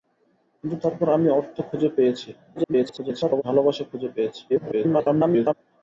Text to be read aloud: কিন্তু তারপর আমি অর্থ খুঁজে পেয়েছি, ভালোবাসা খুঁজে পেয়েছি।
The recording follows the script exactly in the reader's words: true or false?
false